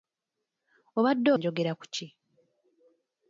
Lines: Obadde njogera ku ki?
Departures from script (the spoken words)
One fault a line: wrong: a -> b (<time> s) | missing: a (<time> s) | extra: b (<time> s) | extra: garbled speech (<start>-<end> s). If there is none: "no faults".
no faults